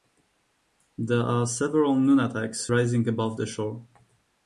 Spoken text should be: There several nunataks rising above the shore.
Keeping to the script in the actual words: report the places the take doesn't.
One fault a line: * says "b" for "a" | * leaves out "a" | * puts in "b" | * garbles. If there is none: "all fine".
* puts in "are"